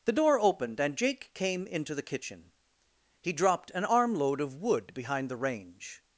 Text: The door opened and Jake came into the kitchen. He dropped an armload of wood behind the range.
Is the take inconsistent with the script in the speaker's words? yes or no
no